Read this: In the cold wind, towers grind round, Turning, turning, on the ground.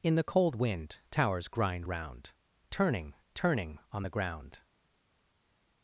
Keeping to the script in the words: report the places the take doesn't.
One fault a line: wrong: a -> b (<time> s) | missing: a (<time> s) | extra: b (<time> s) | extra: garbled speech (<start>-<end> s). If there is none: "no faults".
no faults